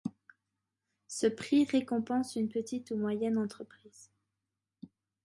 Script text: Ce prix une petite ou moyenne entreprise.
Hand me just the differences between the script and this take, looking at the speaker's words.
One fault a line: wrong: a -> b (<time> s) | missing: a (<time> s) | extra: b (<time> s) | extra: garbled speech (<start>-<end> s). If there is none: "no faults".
extra: récompense (1.6 s)